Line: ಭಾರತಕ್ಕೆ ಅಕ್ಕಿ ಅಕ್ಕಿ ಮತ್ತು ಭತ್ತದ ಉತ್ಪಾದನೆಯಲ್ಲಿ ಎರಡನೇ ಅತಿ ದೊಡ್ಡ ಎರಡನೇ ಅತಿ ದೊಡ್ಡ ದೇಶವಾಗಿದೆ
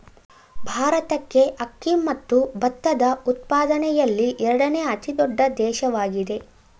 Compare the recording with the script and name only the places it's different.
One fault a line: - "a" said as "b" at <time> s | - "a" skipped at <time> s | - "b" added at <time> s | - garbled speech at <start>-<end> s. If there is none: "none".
- "ಅಕ್ಕಿ" skipped at 1.9 s
- "ಎರಡನೇ ಅತಿ ದೊಡ್ಡ" skipped at 5.4 s